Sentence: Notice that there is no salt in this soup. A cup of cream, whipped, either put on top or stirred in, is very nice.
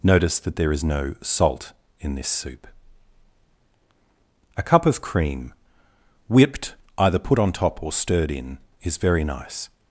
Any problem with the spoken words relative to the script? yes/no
no